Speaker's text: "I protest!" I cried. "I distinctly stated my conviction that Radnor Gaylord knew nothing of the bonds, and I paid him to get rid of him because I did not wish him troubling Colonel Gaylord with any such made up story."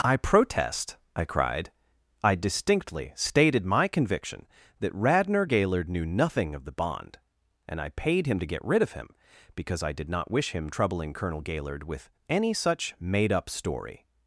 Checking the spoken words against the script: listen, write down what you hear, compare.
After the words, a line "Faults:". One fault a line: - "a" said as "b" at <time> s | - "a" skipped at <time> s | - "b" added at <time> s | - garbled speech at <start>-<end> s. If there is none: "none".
"I protest!" I cried. "I distinctly stated my conviction that Radnor Gaylord knew nothing of the bond, and I paid him to get rid of him because I did not wish him troubling Colonel Gaylord with any such made up story."
Faults:
- "bonds" said as "bond" at 6.7 s